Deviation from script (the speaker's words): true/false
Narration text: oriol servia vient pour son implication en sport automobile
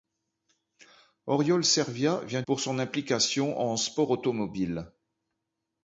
false